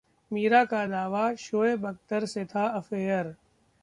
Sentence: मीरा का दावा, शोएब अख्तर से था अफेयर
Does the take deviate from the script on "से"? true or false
false